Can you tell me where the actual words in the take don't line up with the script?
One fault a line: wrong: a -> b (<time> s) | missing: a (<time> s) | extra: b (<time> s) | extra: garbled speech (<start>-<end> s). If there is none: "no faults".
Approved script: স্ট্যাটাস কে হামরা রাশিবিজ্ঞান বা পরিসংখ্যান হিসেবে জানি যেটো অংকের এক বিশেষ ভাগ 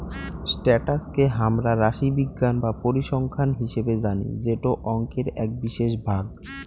no faults